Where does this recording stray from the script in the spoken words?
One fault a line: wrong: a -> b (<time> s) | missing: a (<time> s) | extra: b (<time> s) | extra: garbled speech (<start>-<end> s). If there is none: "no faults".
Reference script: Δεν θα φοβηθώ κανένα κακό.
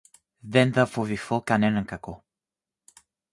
no faults